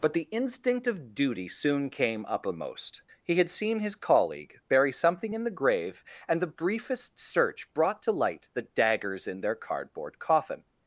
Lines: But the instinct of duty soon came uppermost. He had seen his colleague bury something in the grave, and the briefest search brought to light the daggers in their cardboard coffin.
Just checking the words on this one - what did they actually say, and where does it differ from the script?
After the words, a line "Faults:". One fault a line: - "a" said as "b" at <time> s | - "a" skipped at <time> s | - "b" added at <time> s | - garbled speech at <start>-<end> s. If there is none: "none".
But the instinct of duty soon came uppermost. He had seen his colleague bury something in the grave, and the briefest search brought to light the daggers in their cardboard coffin.
Faults:
none